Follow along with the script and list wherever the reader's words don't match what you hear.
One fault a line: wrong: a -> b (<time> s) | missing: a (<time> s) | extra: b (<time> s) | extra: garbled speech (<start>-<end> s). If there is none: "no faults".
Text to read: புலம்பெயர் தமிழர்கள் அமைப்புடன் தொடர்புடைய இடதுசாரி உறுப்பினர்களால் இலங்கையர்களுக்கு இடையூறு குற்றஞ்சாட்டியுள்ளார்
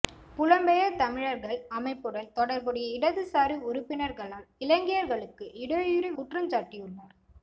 no faults